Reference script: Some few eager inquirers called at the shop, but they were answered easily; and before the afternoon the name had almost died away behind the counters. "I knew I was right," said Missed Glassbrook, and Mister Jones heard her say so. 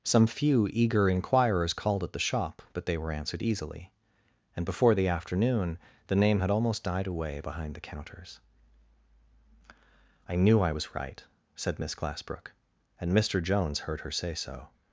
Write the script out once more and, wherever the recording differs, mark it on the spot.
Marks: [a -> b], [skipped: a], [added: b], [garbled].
Some few eager inquirers called at the shop, but they were answered easily; and before the afternoon the name had almost died away behind the counters. "I knew I was right," said [Missed -> Miss] Glassbrook, and Mister Jones heard her say so.